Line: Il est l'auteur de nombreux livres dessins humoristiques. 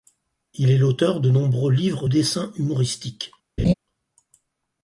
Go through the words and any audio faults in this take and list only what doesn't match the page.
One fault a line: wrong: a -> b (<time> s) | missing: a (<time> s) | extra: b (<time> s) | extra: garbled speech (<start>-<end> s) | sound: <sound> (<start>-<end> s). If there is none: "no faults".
sound: laugh (3.6-3.7 s)